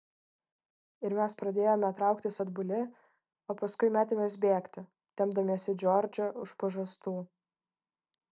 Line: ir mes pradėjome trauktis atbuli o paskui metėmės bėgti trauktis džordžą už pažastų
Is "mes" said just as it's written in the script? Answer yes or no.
yes